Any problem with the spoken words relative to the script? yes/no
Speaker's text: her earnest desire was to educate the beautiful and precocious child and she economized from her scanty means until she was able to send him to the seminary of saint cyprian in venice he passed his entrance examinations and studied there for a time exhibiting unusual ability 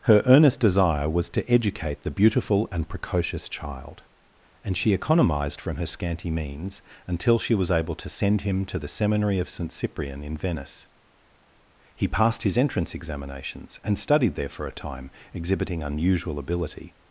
no